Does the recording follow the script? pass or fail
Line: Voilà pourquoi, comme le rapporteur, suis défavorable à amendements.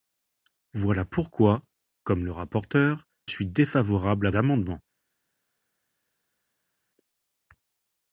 pass